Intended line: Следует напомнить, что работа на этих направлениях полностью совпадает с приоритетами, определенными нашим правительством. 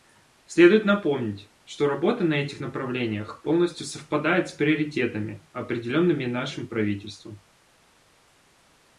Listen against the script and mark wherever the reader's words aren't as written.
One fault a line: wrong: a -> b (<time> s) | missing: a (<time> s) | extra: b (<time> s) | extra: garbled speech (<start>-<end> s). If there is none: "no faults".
no faults